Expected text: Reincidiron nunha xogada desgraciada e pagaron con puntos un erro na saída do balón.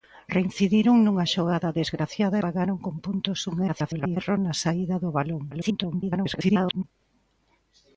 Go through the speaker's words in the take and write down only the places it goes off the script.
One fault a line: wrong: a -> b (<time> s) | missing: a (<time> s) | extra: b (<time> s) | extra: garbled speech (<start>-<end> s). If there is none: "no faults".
missing: e (2.4 s)
extra: garbled speech (3.7-4.2 s)
extra: garbled speech (5.5-6.8 s)